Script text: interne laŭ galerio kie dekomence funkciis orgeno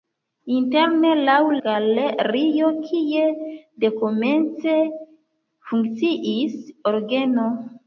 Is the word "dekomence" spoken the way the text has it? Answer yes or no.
yes